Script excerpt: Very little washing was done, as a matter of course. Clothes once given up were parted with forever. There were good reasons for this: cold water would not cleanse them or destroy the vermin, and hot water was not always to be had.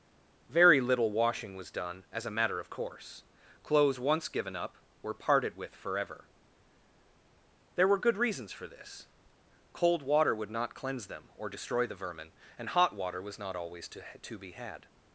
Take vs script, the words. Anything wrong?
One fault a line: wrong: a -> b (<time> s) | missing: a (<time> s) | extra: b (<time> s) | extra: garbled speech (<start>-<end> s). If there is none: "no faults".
extra: to (14.2 s)